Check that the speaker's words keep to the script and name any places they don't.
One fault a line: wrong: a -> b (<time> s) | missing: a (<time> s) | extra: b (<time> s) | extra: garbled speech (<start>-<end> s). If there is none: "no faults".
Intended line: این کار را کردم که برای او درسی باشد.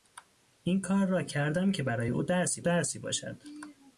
extra: درسی (2.6 s)